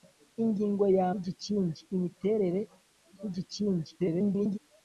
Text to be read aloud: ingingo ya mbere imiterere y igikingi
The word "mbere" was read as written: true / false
false